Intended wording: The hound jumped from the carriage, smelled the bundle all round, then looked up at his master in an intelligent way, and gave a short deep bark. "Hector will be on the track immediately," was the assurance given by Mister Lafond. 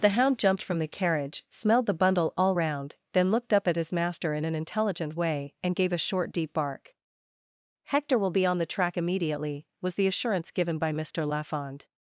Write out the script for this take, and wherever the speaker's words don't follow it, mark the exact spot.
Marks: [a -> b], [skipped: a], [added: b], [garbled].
The hound jumped from the carriage, smelled the bundle all round, then looked up at his master in an intelligent way, and gave a short deep bark. "Hector will be on the track immediately," was the assurance given by Mister Lafond.